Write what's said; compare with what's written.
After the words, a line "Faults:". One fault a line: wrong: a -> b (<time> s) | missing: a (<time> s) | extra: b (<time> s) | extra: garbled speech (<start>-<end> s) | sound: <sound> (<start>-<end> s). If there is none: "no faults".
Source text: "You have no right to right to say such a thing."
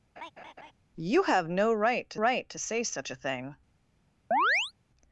"You have no right to right to say such a thing."
Faults:
sound: laugh (0.2-0.7 s)
sound: chirp (4.3-4.7 s)